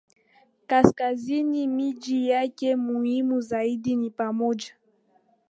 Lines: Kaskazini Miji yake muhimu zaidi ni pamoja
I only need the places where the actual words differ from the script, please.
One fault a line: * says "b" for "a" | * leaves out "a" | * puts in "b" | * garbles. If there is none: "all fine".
all fine